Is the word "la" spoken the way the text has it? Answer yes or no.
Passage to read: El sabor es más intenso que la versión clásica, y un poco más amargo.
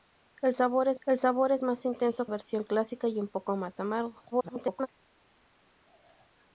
no